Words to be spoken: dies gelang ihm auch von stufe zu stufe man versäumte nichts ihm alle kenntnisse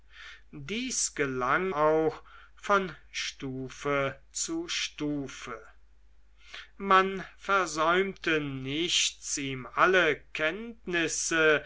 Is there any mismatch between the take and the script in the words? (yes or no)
yes